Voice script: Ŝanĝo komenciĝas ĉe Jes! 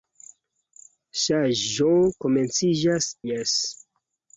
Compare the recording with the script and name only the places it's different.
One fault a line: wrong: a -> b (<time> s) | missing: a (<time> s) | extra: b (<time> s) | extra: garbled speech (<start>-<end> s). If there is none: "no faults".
missing: ĉe (3.1 s)